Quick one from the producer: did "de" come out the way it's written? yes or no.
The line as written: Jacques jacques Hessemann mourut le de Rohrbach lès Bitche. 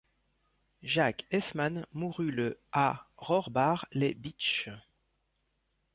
no